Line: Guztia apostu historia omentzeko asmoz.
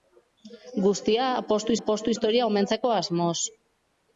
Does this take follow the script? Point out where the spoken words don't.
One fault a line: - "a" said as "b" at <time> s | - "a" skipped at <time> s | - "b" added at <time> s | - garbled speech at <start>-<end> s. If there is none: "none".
- "apostu" added at 1.8 s